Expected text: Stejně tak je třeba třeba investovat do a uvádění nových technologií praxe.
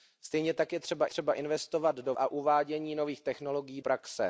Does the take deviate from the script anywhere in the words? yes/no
no